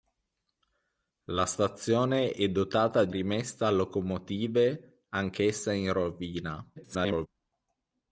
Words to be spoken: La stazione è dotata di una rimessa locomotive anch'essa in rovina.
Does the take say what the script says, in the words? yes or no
no